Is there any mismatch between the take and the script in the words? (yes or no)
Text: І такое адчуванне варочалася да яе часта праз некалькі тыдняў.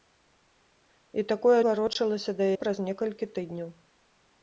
yes